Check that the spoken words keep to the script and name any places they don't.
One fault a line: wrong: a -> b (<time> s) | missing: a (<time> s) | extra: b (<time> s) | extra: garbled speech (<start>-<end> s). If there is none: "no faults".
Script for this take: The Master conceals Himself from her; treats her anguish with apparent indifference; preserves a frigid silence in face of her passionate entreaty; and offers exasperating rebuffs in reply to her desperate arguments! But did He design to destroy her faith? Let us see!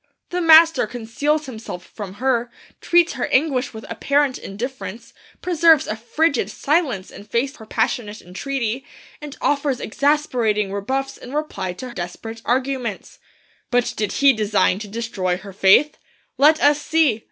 missing: of (7.6 s)
missing: her (11.9 s)